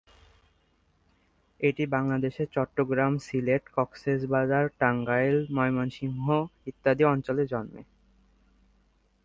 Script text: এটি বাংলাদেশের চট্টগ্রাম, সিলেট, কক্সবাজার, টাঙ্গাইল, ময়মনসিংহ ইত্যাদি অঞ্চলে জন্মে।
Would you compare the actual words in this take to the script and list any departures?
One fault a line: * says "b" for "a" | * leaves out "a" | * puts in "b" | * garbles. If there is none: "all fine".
all fine